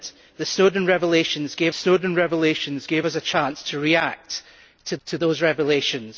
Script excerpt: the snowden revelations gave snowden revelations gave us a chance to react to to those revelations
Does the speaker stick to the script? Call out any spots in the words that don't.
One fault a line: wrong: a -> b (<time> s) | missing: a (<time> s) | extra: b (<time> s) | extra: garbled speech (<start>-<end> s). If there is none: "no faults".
no faults